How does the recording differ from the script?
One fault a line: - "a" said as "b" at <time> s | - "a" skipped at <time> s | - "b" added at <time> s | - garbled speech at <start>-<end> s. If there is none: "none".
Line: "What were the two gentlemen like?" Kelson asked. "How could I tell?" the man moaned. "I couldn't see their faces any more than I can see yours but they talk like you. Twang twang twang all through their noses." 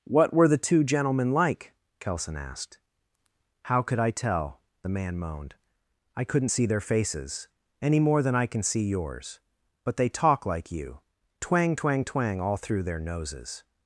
none